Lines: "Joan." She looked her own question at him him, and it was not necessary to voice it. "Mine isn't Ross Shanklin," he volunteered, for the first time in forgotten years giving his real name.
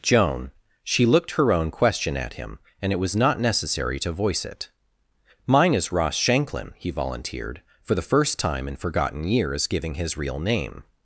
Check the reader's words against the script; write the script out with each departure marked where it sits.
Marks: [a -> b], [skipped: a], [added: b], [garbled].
"Joan." She looked her own question at him [skipped: him,] and it was not necessary to voice it. "Mine [isn't -> is] Ross Shanklin," he volunteered, for the first time in forgotten years giving his real name.